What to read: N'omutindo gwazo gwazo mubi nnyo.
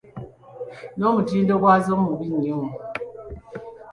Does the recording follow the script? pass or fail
fail